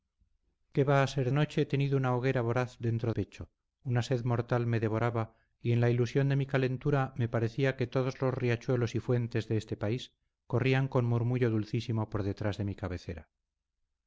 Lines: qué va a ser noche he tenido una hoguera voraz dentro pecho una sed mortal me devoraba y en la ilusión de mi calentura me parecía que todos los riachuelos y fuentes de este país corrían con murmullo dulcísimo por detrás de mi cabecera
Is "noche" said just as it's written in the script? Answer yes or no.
yes